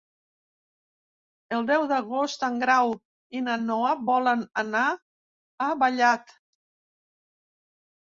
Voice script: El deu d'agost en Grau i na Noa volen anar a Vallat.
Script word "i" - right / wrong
right